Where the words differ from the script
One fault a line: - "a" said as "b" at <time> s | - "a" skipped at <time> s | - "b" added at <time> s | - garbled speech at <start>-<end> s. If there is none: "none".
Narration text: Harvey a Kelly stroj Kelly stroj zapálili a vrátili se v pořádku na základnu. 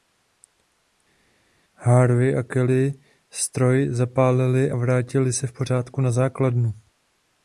- "Kelly stroj" skipped at 3.9 s